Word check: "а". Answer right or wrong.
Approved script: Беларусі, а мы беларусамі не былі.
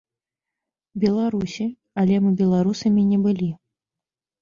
wrong